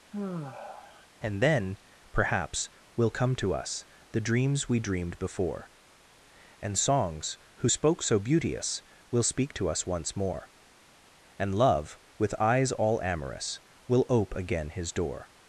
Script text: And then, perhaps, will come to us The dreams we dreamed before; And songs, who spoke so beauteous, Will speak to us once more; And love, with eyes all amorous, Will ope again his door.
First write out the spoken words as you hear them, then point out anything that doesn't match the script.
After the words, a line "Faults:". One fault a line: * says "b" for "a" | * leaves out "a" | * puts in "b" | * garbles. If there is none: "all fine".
And then, perhaps, will come to us The dreams we dreamed before; And songs, who spoke so beauteous, Will speak to us once more; And love, with eyes all amorous, Will ope again his door.
Faults:
all fine